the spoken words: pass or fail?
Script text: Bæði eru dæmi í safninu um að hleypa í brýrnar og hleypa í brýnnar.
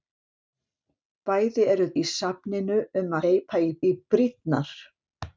fail